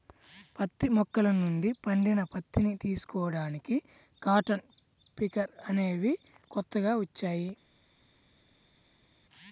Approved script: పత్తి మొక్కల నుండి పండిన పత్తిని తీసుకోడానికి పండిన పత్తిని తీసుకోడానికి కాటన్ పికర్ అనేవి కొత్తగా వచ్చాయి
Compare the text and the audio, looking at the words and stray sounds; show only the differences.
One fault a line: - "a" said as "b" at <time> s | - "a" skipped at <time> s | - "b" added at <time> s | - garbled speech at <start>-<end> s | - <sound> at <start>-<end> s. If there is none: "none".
- "పండిన పత్తిని తీసుకోడానికి" skipped at 3.8 s